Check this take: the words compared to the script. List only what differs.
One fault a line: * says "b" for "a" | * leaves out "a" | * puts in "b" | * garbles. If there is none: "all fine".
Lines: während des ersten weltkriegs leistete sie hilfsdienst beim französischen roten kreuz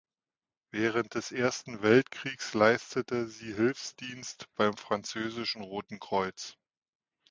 all fine